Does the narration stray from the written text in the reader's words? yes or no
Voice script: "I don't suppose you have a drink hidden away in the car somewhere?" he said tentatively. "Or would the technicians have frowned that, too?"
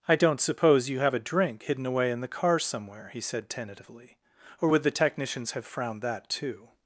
no